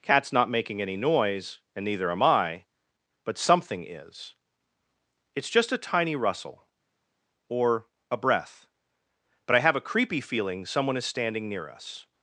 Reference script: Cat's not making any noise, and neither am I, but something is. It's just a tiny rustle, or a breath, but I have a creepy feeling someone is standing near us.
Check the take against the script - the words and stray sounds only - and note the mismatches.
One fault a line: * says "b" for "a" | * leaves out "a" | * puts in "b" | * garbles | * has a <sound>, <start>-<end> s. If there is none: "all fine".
all fine